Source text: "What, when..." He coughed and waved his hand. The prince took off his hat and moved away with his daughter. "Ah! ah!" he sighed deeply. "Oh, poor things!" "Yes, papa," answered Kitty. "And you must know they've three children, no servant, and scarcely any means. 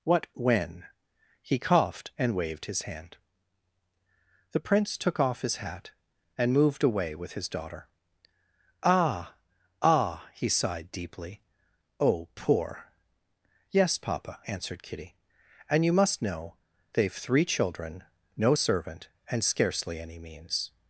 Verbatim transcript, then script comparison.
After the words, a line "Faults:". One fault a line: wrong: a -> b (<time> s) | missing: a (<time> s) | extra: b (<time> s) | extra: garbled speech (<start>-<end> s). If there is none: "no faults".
"What, when..." He coughed and waved his hand. The prince took off his hat and moved away with his daughter. "Ah! ah!" he sighed deeply. "Oh, poor!" "Yes, papa," answered Kitty. "And you must know they've three children, no servant, and scarcely any means.
Faults:
missing: things (12.9 s)